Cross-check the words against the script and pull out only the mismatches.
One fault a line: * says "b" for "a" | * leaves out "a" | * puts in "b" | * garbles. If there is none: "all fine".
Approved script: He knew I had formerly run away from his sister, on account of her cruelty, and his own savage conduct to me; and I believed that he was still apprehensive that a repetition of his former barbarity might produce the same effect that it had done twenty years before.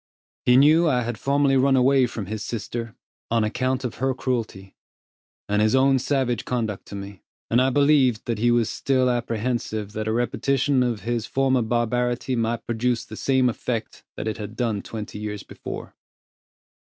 all fine